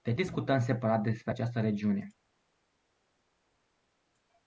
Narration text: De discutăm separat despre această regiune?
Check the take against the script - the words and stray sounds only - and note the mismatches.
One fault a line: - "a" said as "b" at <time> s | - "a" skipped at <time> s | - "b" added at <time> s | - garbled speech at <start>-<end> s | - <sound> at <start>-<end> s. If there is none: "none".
none